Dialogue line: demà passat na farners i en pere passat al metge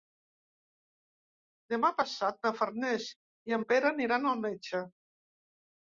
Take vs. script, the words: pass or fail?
fail